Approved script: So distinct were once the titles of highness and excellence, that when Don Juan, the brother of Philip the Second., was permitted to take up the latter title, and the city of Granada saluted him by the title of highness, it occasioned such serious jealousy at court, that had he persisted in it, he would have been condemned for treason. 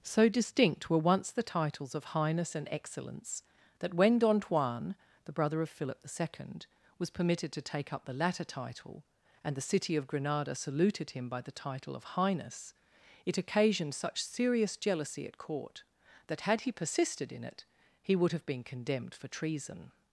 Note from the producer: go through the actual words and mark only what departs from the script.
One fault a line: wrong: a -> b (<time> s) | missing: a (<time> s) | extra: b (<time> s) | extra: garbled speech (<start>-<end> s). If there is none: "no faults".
no faults